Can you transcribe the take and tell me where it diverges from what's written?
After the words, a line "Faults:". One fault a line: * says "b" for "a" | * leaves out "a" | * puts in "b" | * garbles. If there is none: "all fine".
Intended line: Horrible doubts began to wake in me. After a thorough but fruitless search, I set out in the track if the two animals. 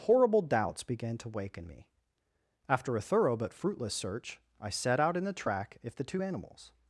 Horrible doubts began to wake in me. After a thorough but fruitless search, I set out in the track if the two animals.
Faults:
all fine